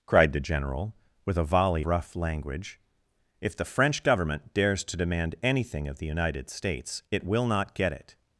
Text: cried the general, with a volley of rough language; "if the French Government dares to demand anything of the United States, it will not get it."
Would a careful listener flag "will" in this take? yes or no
no